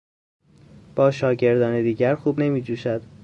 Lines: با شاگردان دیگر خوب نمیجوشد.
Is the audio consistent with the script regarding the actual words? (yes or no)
yes